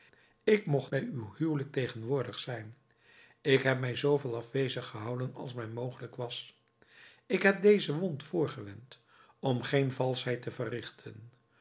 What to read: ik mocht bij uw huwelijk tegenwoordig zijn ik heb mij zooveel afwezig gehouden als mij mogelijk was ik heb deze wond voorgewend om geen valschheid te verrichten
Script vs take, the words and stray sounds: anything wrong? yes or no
no